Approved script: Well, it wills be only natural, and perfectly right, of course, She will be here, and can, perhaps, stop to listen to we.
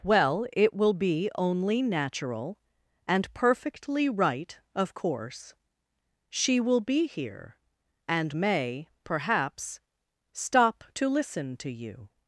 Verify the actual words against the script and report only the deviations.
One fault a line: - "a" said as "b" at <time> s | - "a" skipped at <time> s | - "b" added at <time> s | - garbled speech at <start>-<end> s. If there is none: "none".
- "wills" said as "will" at 0.7 s
- "can" said as "may" at 8.3 s
- "we" said as "you" at 11.7 s